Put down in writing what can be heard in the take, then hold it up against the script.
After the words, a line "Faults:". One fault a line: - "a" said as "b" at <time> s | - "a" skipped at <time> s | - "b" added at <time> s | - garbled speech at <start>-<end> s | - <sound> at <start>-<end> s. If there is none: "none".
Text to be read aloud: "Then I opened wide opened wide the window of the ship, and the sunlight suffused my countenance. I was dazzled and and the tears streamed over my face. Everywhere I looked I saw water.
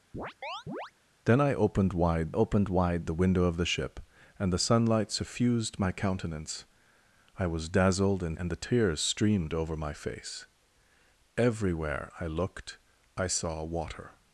"Then I opened wide opened wide the window of the ship, and the sunlight suffused my countenance. I was dazzled and and the tears streamed over my face. Everywhere I looked I saw water.
Faults:
- chirp at 0.1-0.9 s